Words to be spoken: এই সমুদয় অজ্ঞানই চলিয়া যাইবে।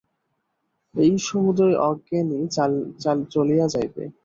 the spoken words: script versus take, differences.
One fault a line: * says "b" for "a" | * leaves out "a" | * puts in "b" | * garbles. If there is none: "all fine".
all fine